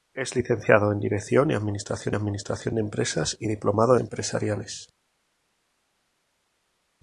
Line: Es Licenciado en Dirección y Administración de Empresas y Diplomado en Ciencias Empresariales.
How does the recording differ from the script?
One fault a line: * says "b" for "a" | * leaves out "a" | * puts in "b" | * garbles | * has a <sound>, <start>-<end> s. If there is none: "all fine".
* puts in "Administración"
* leaves out "en Ciencias"